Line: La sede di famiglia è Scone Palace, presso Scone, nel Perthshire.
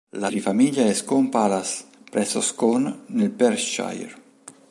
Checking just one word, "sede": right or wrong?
wrong